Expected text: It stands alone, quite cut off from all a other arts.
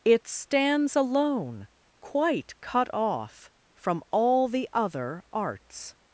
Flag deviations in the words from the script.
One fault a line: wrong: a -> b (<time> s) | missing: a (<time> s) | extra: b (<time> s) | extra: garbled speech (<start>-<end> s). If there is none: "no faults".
wrong: a -> the (4.5 s)